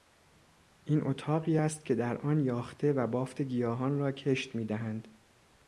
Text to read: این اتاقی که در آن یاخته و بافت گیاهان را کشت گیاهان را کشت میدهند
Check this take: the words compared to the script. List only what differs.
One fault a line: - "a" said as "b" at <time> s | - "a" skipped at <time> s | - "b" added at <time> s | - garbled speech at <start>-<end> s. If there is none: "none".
- "است" added at 1.6 s
- "گیاهان را کشت" skipped at 4.6 s